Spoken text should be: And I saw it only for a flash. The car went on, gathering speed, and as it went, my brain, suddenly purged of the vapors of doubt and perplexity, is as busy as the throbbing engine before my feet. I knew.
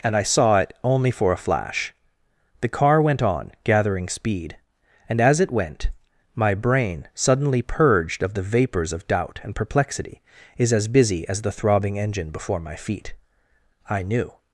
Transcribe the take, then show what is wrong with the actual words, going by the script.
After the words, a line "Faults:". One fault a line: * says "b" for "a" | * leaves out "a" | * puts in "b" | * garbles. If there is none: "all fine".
And I saw it only for a flash. The car went on, gathering speed, and as it went, my brain, suddenly purged of the vapors of doubt and perplexity, is as busy as the throbbing engine before my feet. I knew.
Faults:
all fine